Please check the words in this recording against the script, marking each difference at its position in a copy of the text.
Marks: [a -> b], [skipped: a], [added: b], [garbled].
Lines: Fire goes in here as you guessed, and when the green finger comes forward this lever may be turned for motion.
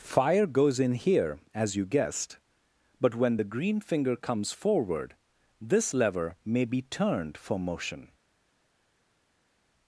Fire goes in here as you guessed, [and -> but] when the green finger comes forward this lever may be turned for motion.